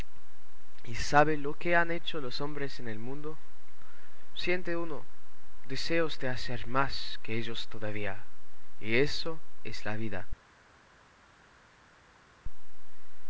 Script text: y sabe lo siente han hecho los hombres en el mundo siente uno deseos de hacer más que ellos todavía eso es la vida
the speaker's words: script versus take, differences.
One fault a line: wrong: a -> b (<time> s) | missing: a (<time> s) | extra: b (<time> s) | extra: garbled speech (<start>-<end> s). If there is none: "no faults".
wrong: siente -> que (1.6 s)
extra: y (8.8 s)